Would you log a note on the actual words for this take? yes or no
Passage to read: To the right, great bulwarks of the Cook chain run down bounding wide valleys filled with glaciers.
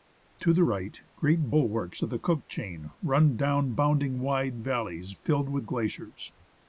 no